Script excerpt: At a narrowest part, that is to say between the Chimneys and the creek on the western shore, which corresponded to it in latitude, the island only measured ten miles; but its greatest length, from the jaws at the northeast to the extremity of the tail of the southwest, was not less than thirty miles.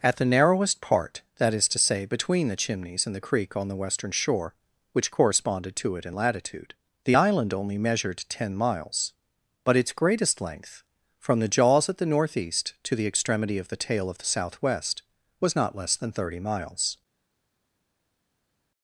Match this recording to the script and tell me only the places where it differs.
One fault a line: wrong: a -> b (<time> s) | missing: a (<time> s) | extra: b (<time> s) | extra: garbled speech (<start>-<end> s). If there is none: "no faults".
wrong: a -> the (0.1 s)